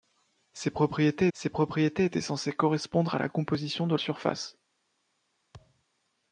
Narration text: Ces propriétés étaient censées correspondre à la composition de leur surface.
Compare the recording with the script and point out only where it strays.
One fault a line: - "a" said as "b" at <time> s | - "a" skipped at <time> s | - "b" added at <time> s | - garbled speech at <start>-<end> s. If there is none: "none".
- "ces propriétés" added at 1.3 s
- "leur" skipped at 4.0 s